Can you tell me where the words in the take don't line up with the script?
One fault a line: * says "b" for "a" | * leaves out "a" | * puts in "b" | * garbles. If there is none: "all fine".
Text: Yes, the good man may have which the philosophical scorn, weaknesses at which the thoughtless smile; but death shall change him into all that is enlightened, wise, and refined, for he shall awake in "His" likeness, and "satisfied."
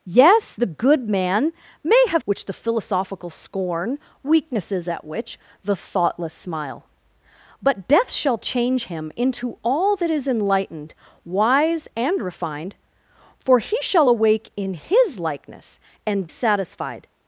all fine